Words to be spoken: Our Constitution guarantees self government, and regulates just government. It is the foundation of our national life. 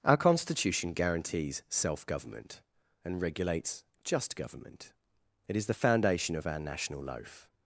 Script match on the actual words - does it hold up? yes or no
no